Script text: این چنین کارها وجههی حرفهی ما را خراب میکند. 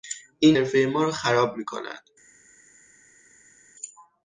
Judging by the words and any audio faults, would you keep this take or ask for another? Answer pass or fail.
fail